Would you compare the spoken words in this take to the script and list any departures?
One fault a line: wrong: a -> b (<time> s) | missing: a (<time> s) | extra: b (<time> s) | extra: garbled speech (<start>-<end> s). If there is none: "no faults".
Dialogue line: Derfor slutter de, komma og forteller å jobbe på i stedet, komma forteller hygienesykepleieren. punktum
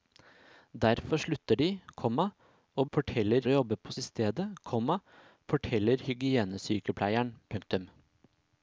no faults